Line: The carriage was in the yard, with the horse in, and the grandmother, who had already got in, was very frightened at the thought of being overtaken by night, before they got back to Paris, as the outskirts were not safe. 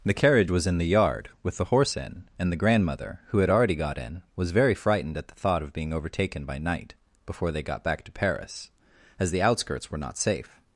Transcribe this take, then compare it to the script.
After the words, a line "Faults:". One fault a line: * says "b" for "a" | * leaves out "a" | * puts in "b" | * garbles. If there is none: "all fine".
The carriage was in the yard, with the horse in, and the grandmother, who had already got in, was very frightened at the thought of being overtaken by night, before they got back to Paris, as the outskirts were not safe.
Faults:
all fine